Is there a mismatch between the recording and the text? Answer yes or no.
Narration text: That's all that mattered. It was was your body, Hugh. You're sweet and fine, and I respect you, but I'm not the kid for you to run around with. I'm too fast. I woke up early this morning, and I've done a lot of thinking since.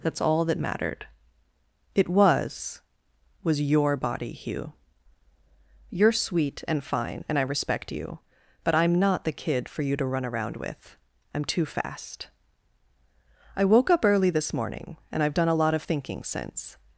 no